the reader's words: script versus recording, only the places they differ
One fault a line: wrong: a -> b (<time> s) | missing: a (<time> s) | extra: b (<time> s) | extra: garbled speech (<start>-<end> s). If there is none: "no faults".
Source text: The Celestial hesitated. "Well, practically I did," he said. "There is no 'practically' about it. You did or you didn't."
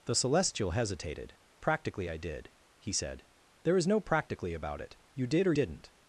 missing: Well (1.4 s)
missing: you (5.5 s)